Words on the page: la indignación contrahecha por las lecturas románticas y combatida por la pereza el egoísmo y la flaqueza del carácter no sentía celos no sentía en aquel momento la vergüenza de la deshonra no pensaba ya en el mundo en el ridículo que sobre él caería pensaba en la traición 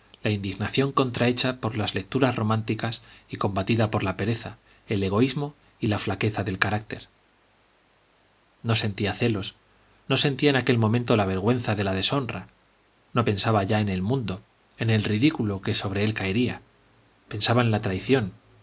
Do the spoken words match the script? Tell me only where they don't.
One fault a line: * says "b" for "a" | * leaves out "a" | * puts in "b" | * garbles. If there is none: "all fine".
all fine